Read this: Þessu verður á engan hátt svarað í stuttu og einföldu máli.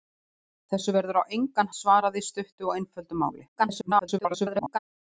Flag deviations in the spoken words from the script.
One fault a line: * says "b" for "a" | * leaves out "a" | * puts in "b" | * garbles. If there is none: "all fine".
* leaves out "hátt"
* garbles